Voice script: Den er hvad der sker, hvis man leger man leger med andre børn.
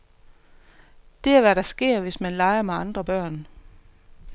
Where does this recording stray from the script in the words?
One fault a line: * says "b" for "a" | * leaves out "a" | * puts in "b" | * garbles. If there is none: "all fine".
* says "Det" for "Den"
* leaves out "man leger"